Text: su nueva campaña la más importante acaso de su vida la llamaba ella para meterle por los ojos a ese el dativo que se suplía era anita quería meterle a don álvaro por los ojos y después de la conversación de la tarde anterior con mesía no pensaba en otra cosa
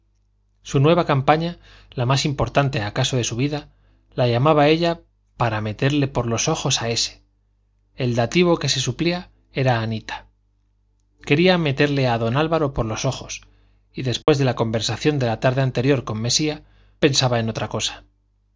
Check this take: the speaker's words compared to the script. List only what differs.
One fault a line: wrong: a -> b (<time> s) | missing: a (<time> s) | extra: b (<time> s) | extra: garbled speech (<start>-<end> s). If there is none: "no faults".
missing: no (16.6 s)